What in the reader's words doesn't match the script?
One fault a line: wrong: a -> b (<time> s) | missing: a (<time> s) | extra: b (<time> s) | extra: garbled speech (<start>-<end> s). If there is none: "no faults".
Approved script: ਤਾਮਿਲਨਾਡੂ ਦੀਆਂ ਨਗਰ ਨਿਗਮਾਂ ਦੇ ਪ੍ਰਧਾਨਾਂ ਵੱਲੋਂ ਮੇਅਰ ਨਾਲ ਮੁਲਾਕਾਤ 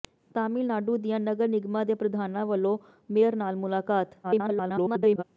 extra: garbled speech (4.2-5.2 s)